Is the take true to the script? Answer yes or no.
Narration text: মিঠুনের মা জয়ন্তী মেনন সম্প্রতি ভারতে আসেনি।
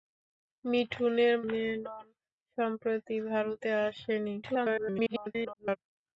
no